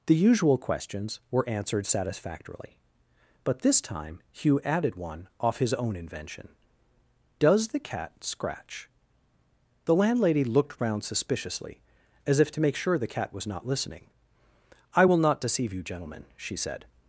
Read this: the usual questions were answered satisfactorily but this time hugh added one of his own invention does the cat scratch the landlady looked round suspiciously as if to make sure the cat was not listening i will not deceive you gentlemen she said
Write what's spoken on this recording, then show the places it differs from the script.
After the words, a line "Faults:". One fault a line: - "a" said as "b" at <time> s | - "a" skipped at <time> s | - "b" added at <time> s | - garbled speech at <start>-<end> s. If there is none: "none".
the usual questions were answered satisfactorily but this time hugh added one off his own invention does the cat scratch the landlady looked round suspiciously as if to make sure the cat was not listening i will not deceive you gentlemen she said
Faults:
- "of" said as "off" at 5.4 s